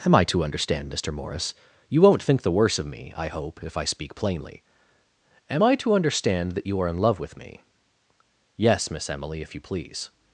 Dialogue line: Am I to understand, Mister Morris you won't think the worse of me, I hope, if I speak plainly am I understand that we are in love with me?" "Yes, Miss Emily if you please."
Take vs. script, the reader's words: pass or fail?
fail